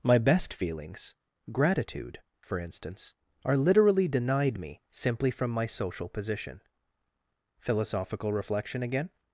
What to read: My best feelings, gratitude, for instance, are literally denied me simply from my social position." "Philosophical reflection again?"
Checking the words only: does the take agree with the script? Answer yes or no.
yes